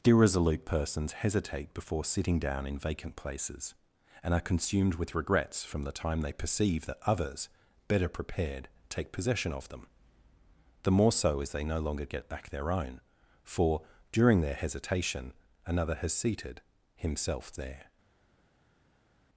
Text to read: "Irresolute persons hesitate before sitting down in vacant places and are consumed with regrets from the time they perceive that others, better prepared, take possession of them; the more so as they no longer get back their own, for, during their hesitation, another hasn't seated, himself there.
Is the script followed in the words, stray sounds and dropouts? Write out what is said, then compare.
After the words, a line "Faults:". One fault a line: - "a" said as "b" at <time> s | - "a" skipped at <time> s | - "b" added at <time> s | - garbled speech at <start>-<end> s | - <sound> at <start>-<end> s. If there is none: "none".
"Irresolute persons hesitate before sitting down in vacant places and are consumed with regrets from the time they perceive that others, better prepared, take possession of them; the more so as they no longer get back their own, for, during their hesitation, another has seated, himself there.
Faults:
- "hasn't" said as "has" at 15.9 s